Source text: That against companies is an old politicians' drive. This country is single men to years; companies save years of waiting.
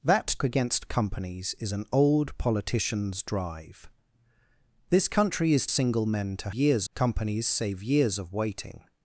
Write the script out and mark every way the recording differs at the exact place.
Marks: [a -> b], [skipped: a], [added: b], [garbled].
That against companies is an old politicians' drive. This country is single men to years; companies save years of waiting.